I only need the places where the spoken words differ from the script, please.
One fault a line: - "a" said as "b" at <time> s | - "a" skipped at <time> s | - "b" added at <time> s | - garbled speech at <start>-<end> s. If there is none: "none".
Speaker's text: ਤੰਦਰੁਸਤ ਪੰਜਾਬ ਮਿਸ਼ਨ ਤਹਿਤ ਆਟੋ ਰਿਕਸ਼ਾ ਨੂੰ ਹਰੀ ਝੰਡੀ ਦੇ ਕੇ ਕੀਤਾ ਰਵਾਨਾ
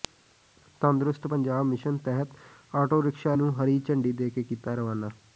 none